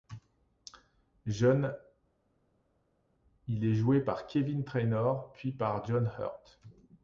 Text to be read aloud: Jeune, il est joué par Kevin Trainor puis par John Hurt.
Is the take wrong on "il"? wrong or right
right